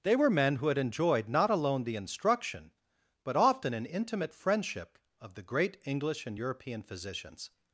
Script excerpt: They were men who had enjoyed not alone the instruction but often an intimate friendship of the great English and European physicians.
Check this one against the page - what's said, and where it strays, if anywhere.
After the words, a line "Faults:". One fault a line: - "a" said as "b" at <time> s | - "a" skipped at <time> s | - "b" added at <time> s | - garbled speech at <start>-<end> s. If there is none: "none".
They were men who had enjoyed not alone the instruction but often an intimate friendship of the great English and European physicians.
Faults:
none